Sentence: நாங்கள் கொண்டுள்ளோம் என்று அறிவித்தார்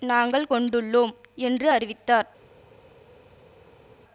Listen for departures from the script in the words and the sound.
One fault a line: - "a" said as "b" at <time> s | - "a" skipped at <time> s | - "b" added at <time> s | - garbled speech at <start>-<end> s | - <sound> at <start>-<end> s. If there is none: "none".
none